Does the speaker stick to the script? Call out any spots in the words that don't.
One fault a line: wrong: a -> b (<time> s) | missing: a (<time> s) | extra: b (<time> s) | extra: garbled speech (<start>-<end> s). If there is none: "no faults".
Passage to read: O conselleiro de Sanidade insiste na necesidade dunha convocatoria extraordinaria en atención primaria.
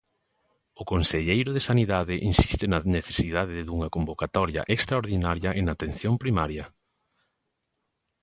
no faults